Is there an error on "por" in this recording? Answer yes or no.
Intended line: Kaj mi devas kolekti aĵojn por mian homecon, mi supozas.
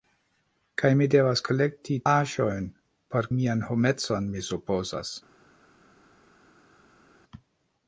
no